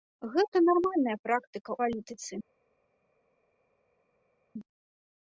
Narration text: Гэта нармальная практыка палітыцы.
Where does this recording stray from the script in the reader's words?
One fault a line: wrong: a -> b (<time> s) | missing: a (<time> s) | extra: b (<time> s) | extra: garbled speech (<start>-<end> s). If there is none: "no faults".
no faults